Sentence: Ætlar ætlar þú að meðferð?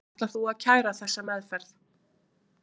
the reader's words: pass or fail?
fail